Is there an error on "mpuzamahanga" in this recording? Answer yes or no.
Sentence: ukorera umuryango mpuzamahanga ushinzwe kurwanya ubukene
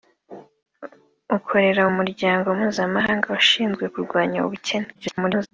no